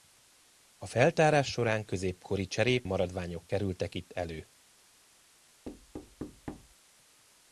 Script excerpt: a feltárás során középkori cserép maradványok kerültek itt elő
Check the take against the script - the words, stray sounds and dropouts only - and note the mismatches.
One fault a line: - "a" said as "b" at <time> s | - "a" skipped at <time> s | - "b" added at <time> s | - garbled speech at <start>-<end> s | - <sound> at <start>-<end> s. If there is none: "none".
- thud at 5.6-6.7 s